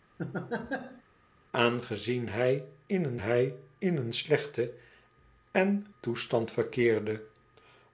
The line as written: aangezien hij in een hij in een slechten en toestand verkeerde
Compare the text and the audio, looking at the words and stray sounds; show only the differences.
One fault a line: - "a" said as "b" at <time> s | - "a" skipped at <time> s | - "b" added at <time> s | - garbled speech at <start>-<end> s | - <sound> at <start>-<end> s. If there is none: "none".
- laugh at 0.2-1.0 s